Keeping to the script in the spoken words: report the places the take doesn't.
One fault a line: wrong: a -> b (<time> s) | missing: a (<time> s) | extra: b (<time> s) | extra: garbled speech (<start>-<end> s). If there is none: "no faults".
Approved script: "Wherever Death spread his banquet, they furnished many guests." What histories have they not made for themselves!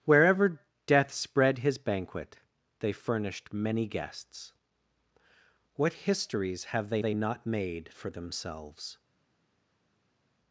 extra: they (7.0 s)